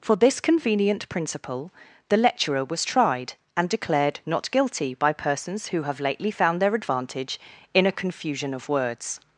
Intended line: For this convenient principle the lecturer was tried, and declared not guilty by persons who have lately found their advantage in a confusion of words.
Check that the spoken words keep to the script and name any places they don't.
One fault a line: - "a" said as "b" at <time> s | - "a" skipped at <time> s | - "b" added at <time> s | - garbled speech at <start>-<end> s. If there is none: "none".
none